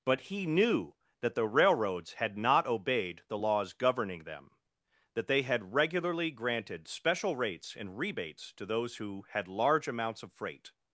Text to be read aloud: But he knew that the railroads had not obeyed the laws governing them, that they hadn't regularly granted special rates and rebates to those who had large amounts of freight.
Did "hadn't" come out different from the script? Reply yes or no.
yes